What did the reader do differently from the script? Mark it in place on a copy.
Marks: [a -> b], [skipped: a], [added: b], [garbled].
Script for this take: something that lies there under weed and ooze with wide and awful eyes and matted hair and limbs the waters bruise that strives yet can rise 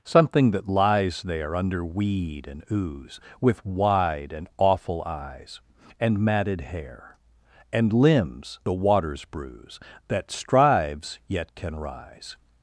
something that lies there under weed and ooze with wide and awful eyes and matted hair and limbs the waters bruise that strives yet can rise